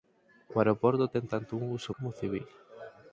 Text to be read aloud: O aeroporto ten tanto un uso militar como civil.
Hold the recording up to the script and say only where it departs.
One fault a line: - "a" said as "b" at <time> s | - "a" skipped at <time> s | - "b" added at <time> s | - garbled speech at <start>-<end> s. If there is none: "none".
- "militar" skipped at 1.9 s